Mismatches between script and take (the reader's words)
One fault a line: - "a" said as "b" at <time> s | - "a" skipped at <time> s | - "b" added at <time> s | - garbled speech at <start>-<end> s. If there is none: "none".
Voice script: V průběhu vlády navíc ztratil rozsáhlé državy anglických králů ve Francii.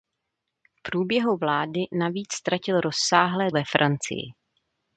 - "državy anglických králů" skipped at 3.5 s